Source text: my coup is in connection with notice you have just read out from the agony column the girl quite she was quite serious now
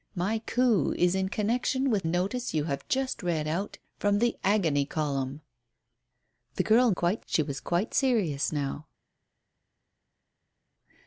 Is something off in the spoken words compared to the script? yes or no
no